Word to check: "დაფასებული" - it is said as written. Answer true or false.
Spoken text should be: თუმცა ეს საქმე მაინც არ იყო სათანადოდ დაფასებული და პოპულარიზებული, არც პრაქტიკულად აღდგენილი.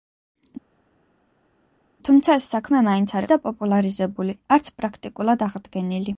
false